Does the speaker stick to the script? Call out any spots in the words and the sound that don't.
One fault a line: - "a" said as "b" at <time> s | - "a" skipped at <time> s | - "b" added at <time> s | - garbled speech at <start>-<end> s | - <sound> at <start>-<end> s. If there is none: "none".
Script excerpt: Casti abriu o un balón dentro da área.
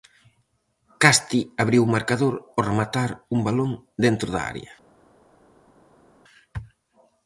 - "marcador ao rematar" added at 1.9 s